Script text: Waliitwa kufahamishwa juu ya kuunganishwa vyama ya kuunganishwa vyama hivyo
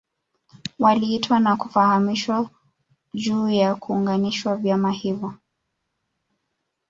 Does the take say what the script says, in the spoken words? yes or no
no